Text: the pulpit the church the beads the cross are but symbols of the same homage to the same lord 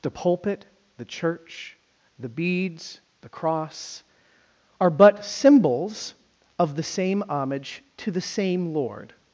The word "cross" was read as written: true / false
true